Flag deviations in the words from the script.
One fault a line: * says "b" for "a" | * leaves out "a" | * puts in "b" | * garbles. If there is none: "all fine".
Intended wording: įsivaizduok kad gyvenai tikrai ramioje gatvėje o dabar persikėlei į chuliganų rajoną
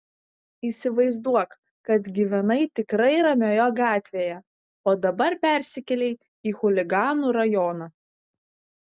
all fine